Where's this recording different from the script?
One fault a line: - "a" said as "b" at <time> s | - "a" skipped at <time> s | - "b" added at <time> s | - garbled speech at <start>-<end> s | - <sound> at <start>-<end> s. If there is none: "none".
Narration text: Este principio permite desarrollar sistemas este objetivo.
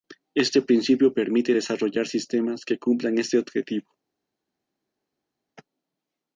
- "que cumplan" added at 2.6 s